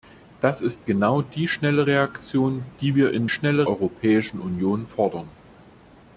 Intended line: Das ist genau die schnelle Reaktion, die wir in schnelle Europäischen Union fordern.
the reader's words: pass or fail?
pass